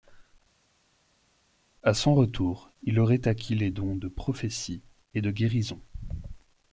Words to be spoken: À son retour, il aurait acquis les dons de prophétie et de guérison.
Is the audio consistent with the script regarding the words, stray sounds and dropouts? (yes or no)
yes